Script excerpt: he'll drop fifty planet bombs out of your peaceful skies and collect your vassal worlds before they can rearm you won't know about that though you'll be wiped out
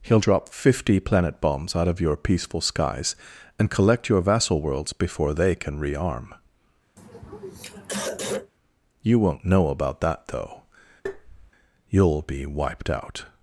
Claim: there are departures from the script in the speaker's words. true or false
false